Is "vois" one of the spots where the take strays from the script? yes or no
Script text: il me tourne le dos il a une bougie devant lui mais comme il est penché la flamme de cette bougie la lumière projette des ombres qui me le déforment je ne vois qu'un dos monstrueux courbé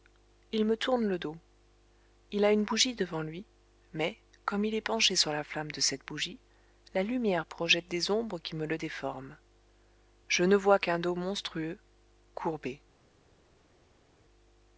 no